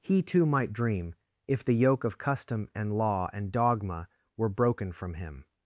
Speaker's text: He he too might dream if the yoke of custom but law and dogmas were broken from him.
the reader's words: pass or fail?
fail